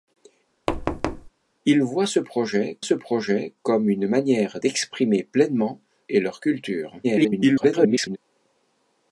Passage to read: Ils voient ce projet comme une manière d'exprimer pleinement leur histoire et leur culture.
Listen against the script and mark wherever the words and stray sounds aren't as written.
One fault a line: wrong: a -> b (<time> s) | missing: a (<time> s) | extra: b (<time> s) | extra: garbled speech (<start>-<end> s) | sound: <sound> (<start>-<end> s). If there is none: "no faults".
sound: thud (0.7-1.3 s)
extra: ce projet (2.8 s)
missing: leur histoire (5.8 s)
extra: garbled speech (7.0-8.2 s)